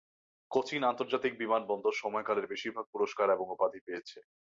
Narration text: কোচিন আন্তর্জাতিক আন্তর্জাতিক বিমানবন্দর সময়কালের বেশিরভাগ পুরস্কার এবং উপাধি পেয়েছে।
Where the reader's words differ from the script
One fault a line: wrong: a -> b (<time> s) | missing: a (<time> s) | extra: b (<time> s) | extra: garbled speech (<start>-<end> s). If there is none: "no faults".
missing: আন্তর্জাতিক (1.3 s)